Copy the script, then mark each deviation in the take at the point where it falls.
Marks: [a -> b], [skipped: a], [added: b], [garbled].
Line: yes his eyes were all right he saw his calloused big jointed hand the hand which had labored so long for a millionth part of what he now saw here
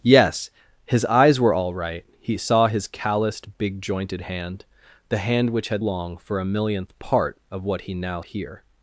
yes his eyes were all right he saw his calloused big jointed hand the hand which had [skipped: labored so] long for a millionth part of what he now [skipped: saw] here